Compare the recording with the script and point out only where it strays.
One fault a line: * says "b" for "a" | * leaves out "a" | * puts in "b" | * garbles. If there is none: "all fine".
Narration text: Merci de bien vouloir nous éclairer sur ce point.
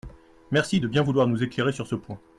all fine